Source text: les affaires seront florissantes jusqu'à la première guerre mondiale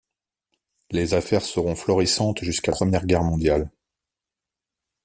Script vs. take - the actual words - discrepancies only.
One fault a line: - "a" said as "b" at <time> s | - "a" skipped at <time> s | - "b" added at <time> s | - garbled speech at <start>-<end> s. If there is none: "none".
- "la" skipped at 2.7 s